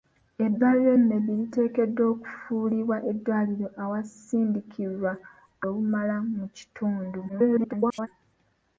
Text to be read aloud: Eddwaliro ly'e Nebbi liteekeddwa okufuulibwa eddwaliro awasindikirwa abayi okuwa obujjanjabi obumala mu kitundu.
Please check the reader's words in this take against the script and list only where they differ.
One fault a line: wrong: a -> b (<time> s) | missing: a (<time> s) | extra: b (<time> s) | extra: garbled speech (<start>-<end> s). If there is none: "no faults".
missing: ly'e (0.9 s)
missing: abayi okuwa obujjanjabi (5.1 s)
extra: garbled speech (7.3-8.1 s)